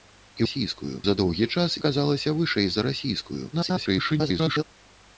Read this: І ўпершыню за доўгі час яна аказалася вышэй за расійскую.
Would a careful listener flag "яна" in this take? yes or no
yes